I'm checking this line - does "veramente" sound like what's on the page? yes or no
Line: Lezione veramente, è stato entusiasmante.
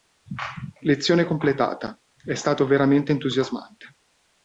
no